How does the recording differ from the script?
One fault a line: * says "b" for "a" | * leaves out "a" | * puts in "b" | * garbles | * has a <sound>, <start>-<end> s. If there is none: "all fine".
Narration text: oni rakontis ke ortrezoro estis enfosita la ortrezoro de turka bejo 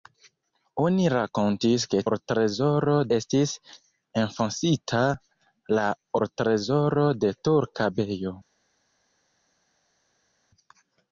all fine